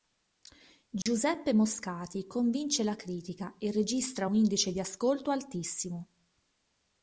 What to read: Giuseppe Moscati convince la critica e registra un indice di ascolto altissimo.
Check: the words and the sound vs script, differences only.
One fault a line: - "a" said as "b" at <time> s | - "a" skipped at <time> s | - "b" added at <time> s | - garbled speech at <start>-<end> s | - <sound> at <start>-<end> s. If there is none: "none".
- dropout at 1.0-1.1 s